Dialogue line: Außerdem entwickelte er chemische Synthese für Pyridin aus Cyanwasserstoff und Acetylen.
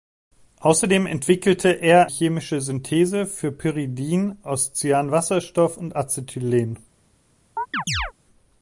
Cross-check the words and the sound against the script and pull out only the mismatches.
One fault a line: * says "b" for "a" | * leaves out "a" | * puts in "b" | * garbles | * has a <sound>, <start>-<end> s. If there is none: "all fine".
* has a chirp, 7.6-8.1 s